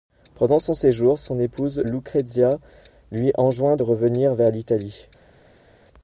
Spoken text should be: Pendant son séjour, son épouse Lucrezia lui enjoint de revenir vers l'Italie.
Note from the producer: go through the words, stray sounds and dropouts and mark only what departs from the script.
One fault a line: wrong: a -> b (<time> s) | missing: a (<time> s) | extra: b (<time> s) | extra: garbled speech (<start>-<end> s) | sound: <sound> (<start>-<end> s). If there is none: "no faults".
no faults